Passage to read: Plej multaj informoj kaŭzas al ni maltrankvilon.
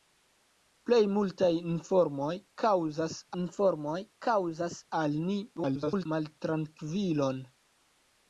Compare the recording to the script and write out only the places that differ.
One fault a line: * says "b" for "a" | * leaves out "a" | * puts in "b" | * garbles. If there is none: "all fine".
* puts in "informoj kaŭzas"
* garbles